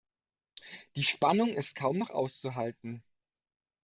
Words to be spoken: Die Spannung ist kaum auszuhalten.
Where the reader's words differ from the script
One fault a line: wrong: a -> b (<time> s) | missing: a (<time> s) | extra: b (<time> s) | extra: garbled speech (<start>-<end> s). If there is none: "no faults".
extra: noch (2.0 s)